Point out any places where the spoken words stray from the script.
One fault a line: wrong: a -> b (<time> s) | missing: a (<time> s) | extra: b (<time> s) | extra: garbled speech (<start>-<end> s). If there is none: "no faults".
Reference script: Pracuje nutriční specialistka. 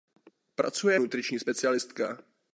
no faults